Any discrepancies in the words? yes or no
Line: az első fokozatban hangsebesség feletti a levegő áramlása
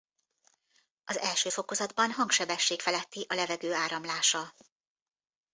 no